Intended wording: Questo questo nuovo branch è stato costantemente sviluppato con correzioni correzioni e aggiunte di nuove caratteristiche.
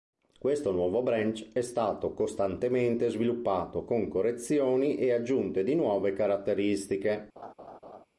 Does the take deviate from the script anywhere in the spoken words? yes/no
yes